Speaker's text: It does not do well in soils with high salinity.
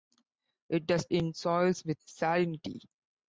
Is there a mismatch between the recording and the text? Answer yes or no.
yes